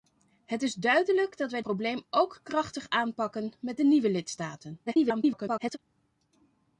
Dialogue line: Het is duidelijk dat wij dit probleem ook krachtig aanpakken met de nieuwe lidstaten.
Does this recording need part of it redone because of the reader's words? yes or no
yes